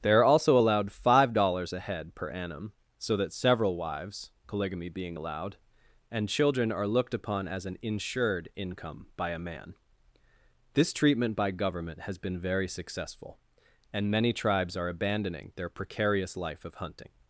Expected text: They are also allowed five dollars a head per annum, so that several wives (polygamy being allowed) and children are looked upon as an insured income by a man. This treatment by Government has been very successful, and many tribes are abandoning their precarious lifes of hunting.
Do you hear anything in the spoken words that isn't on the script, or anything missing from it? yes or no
yes